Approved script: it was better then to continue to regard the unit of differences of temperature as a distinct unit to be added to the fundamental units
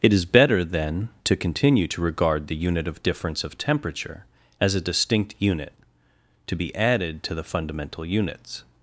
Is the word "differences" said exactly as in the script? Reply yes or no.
no